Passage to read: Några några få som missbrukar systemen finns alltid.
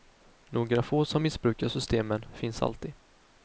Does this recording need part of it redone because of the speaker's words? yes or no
yes